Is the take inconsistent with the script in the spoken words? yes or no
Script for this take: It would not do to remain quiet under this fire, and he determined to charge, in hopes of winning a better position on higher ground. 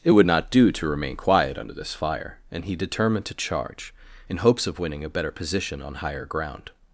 no